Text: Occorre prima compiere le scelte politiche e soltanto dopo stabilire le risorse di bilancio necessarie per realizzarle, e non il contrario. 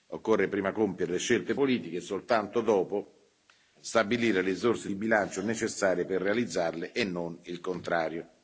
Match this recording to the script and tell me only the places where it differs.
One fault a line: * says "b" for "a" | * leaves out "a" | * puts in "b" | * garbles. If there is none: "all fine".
all fine